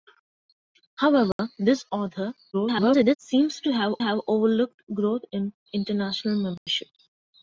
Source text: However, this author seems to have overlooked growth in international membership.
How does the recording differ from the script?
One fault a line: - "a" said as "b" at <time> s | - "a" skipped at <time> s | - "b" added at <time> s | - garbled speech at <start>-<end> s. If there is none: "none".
- garbled speech at 2.5-3.2 s
- "have" added at 4.0 s